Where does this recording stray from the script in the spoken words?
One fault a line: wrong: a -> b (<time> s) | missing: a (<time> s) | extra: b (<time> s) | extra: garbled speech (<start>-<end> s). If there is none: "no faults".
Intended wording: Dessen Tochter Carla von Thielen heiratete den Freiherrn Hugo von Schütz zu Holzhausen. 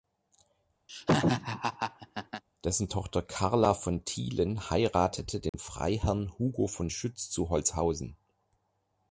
no faults